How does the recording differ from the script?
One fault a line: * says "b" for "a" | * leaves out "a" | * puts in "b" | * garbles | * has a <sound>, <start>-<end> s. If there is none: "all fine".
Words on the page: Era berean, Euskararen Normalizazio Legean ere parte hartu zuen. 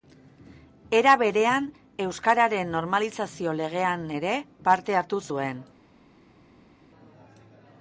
all fine